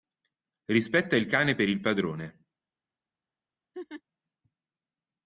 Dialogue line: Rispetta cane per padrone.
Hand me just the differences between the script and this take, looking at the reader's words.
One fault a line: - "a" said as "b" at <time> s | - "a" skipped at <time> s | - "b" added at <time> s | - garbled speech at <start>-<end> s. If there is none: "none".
- "il" added at 1.1 s
- "il" added at 1.7 s